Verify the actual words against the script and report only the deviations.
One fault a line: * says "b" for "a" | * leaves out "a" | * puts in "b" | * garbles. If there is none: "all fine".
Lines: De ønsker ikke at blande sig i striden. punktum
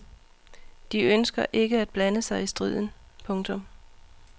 all fine